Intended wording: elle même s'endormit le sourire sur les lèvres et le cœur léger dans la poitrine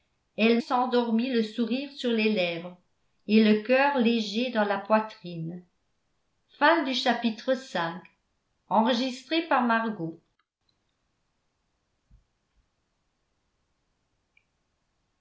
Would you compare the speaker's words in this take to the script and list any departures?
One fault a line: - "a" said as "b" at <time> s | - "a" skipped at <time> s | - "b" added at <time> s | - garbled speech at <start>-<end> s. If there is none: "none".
- "même" skipped at 0.6 s